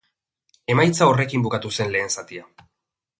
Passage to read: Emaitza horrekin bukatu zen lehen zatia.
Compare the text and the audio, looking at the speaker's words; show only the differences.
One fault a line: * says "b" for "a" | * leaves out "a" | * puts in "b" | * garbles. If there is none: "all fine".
all fine